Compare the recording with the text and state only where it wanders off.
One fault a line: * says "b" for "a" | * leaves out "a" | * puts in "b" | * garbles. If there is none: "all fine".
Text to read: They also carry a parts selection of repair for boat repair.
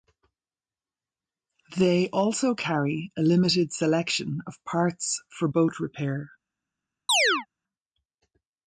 * says "limited" for "parts"
* says "parts" for "repair"